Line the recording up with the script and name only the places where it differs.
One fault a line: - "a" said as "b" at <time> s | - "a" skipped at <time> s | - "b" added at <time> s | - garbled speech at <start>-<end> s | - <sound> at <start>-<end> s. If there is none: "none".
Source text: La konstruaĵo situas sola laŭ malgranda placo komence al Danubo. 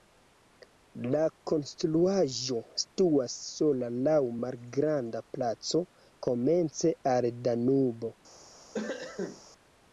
- cough at 8.7-9.4 s